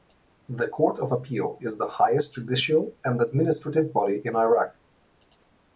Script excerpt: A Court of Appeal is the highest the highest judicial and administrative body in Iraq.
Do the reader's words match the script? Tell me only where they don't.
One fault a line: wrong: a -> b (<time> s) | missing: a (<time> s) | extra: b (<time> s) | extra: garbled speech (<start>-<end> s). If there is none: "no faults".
wrong: A -> The (0.5 s)
missing: the highest (2.3 s)